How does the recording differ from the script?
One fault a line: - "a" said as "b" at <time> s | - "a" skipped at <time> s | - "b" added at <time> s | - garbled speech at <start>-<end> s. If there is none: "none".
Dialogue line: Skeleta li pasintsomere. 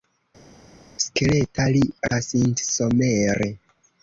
none